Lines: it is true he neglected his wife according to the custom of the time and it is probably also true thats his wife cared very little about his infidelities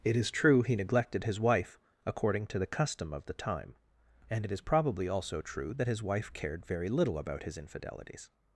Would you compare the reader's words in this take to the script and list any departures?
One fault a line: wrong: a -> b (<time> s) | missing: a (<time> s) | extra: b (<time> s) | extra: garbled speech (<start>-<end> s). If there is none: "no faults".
wrong: thats -> that (5.8 s)